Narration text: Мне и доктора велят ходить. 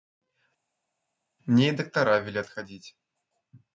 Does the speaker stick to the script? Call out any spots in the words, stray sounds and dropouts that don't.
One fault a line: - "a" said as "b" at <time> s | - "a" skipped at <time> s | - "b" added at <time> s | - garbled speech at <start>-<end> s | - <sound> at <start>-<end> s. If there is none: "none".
none